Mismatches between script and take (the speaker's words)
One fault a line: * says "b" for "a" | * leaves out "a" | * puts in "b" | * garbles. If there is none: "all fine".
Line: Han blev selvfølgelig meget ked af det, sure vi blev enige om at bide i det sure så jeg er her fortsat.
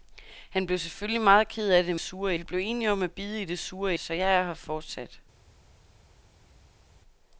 all fine